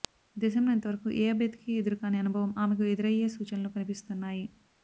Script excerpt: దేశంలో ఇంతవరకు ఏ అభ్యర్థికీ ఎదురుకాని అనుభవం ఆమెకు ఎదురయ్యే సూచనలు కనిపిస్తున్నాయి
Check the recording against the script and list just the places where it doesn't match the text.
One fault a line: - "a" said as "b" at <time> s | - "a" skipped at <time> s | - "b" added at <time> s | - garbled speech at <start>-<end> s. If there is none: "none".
none